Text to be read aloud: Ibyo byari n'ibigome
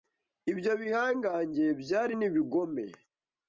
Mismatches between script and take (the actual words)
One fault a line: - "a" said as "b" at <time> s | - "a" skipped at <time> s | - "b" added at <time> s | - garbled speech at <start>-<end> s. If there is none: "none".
- "bihangange" added at 0.8 s